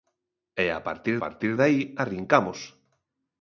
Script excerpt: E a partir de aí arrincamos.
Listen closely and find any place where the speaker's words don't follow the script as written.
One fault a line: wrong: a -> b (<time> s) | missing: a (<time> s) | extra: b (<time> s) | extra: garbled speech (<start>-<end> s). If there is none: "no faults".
extra: partir (1.2 s)